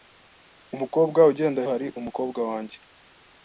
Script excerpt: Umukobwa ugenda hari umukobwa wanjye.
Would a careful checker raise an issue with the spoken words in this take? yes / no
no